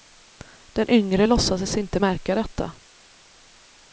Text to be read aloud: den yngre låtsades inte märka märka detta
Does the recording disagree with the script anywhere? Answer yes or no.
yes